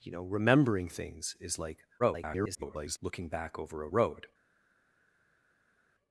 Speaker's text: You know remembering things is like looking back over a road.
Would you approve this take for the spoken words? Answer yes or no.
no